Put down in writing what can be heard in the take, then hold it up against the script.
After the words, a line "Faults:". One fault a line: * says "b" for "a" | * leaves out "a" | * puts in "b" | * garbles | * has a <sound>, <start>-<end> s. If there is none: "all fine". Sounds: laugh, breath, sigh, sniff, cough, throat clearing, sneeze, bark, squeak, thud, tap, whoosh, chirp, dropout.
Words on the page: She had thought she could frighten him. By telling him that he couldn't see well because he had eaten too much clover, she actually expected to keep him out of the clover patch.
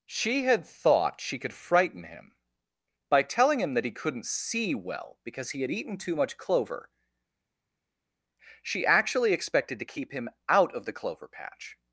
She had thought she could frighten him. By telling him that he couldn't see well because he had eaten too much clover, she actually expected to keep him out of the clover patch.
Faults:
all fine